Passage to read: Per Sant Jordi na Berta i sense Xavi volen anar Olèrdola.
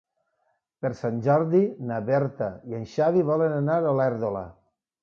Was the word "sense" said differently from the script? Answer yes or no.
yes